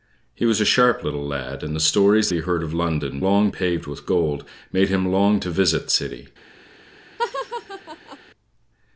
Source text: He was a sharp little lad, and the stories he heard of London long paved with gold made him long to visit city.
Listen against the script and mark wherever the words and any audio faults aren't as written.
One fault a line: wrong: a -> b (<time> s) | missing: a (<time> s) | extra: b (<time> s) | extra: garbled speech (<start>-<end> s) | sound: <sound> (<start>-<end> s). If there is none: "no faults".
sound: laugh (7.2-8.2 s)